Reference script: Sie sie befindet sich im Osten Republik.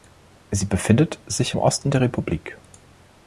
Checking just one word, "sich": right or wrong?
right